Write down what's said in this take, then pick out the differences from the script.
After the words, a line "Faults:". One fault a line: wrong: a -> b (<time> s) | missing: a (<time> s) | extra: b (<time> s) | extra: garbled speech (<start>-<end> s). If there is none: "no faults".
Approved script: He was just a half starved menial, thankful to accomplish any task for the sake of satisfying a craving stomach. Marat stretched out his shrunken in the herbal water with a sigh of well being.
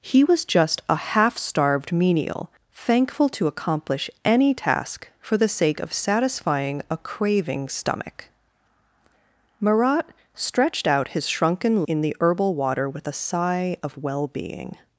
He was just a half starved menial, thankful to accomplish any task for the sake of satisfying a craving stomach. Marat stretched out his shrunken in the herbal water with a sigh of well being.
Faults:
no faults